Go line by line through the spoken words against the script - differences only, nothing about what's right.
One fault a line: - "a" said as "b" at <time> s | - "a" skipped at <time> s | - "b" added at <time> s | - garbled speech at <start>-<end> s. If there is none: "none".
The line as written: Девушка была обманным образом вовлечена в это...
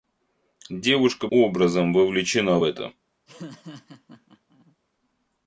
- "была обманным" skipped at 1.3 s